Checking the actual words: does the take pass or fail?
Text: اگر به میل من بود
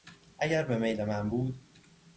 pass